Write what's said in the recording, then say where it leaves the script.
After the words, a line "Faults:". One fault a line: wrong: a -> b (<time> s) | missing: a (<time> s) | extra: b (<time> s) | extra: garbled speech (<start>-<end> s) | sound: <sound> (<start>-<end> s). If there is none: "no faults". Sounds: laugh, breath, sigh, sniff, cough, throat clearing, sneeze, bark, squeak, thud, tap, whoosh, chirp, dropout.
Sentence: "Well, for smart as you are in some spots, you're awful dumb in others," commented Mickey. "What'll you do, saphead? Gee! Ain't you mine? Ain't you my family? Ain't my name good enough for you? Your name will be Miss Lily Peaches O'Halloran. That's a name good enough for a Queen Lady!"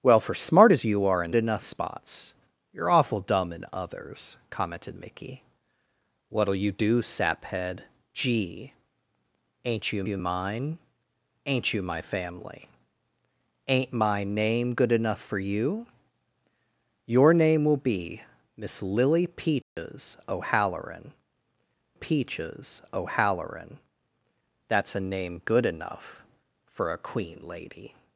"Well, for smart as you are in enough spots, you're awful dumb in others," commented Mickey. "What'll you do, saphead? Gee! Ain't you you mine? Ain't you my family? Ain't my name good enough for you? Your name will be Miss Lily Peaches O'Halloran Peaches O'Halloran. That's a name good enough for a Queen Lady!"
Faults:
wrong: some -> enough (1.3 s)
extra: you (10.1 s)
sound: dropout (19.6-19.8 s)
extra: Peaches O'Halloran (21.9 s)